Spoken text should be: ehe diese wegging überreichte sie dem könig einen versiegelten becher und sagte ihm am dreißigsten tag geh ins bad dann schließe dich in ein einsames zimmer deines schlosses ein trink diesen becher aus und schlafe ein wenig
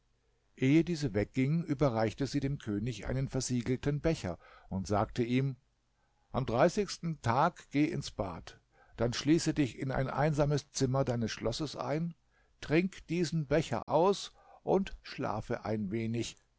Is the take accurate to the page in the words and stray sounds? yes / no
no